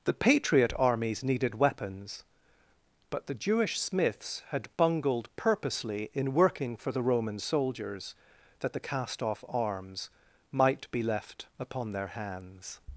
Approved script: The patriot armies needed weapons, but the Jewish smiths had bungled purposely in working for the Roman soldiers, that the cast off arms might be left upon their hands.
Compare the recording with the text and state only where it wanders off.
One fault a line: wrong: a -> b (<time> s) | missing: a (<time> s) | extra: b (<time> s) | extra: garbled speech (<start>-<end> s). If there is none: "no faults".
no faults